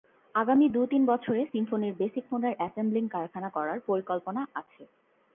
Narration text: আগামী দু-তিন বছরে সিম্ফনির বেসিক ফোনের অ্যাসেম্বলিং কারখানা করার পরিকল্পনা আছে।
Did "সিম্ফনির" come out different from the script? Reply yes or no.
no